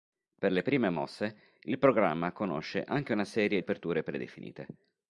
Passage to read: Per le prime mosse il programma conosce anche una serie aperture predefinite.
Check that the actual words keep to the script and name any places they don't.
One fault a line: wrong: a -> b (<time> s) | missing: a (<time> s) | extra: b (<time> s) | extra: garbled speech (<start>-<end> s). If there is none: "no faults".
no faults